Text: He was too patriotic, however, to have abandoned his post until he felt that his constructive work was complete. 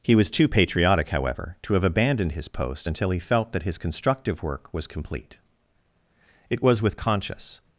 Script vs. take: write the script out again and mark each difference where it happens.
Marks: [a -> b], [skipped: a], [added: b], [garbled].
He was too patriotic, however, to have abandoned his post until he felt that his constructive work was complete. [added: It was with conscious]